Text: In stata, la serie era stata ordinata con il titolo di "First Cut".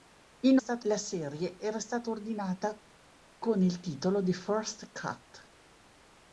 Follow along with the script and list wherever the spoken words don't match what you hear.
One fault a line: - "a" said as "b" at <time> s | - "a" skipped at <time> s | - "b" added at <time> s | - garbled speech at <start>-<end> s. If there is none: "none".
none